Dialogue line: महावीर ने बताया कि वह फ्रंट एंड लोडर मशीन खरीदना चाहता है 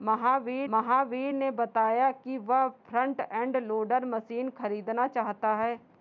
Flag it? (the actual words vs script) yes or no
yes